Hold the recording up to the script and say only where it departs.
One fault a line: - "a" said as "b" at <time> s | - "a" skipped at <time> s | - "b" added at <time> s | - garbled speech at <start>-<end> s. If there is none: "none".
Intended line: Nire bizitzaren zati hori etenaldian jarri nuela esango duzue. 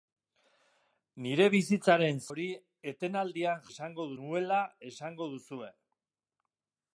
- "zati" skipped at 2.2 s
- "jarri" said as "esango" at 3.7 s